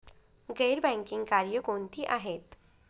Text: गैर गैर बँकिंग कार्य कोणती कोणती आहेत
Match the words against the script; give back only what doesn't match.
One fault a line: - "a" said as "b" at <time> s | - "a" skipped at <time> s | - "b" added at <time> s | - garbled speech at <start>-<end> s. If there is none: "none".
- "गैर" skipped at 0.8 s
- "कोणती" skipped at 2.0 s